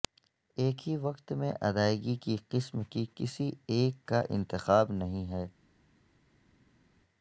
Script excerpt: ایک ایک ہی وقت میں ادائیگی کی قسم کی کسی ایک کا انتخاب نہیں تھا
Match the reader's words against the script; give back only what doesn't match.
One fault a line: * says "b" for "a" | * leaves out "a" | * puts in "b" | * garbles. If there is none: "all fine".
* leaves out "ایک"
* says "ہے" for "تھا"